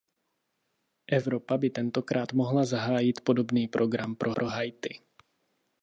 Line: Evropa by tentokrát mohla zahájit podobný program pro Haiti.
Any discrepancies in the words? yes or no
yes